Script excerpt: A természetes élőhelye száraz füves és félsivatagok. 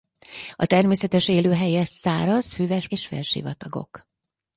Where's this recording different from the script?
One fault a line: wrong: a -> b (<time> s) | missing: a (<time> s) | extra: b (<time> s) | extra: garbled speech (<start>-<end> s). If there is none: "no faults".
no faults